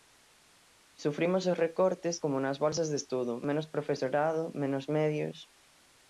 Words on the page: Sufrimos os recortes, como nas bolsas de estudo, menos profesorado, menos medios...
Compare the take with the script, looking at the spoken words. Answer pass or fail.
pass